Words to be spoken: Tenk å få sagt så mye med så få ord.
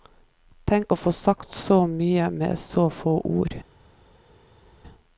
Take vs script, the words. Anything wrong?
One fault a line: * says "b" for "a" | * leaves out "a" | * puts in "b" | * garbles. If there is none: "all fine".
all fine